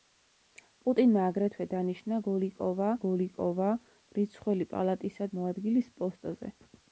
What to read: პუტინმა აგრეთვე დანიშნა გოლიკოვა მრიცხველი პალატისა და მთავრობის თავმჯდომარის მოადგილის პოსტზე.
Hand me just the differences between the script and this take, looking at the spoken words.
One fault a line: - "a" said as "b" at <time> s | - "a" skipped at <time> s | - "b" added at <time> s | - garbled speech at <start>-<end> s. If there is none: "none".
- "გოლიკოვა" added at 3.1 s
- "და მთავრობის თავმჯდომარის" skipped at 5.3 s